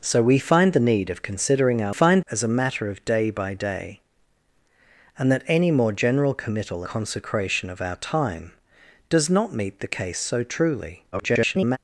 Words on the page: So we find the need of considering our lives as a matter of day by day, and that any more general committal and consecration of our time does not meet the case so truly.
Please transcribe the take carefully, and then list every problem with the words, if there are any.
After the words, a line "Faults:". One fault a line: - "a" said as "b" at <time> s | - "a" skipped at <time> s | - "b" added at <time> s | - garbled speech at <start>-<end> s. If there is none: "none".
So we find the need of considering our find as a matter of day by day, and that any more general committal consecration of our time does not meet the case so truly. [garbled]
Faults:
- "lives" said as "find" at 1.9 s
- "and" skipped at 6.8 s
- garbled speech at 11.1-11.8 s